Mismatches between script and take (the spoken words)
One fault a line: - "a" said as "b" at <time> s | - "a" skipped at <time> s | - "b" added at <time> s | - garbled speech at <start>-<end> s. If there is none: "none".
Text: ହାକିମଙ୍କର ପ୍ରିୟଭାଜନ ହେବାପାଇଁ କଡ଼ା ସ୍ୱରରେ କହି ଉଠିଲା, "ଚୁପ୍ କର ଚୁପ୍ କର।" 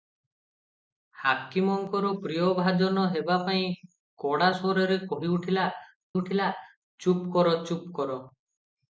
- "ଉଠିଲା" added at 6.2 s